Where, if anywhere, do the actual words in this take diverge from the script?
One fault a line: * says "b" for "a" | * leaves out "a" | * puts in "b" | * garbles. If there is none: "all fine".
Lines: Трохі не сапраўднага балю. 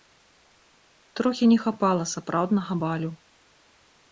* puts in "хапала"